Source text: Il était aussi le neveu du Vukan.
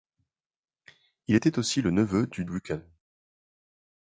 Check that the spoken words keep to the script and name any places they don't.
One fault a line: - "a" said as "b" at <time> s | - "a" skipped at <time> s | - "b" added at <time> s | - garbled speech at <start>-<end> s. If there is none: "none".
none